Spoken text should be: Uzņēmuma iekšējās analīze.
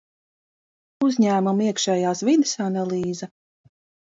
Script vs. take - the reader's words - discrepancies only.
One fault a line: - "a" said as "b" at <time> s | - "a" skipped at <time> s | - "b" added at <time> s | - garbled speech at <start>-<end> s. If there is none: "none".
- "vides" added at 2.3 s